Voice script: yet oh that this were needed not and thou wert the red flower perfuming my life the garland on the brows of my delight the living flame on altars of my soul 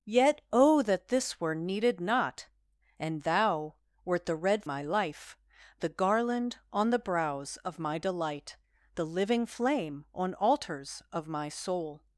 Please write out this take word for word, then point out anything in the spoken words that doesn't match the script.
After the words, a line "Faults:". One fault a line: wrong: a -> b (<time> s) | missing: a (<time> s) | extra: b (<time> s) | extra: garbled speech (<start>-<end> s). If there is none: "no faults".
yet oh that this were needed not and thou wert the red my life the garland on the brows of my delight the living flame on altars of my soul
Faults:
missing: flower perfuming (4.7 s)